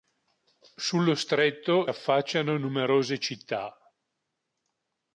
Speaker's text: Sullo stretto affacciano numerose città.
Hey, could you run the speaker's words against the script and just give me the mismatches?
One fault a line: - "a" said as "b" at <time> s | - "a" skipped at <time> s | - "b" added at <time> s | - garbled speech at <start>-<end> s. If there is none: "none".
none